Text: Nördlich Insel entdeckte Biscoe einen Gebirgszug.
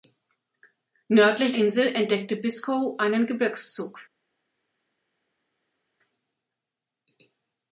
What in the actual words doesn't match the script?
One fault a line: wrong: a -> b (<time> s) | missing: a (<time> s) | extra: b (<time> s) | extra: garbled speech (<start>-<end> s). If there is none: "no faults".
no faults